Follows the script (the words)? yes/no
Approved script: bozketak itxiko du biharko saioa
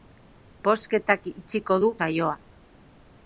no